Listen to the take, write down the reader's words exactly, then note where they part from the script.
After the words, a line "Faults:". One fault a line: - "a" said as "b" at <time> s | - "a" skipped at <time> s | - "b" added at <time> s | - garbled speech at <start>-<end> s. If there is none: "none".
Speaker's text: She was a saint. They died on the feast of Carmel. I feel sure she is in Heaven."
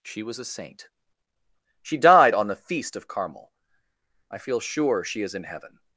She was a saint. She died on the feast of Carmel. I feel sure she is in Heaven."
Faults:
- "They" said as "She" at 1.8 s